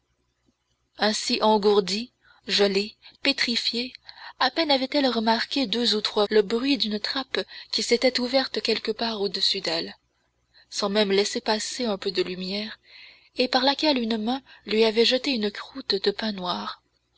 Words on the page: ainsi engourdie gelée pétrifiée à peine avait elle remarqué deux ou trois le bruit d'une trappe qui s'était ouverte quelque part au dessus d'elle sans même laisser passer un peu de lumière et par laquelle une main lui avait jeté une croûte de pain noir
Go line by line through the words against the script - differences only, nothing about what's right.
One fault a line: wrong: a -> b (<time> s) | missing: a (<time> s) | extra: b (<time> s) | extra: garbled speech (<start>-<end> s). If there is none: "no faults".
no faults